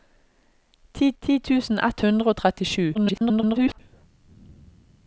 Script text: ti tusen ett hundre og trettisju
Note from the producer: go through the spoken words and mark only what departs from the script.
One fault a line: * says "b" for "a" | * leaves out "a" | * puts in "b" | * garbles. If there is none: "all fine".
* puts in "ti"
* garbles